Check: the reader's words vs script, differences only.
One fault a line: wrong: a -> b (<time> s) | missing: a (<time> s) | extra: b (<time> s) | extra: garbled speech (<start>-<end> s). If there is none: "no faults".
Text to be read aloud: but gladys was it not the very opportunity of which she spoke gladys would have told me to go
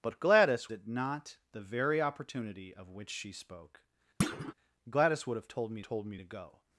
missing: was (0.7 s)
extra: told me (5.8 s)